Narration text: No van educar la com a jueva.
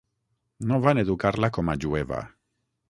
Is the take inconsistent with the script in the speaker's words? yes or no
no